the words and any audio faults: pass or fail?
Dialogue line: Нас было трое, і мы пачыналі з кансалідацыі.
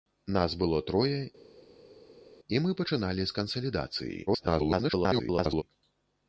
fail